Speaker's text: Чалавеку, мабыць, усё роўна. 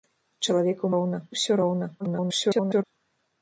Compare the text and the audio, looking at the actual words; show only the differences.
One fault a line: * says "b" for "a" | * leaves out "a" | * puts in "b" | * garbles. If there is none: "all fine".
* says "роўна" for "мабыць"
* garbles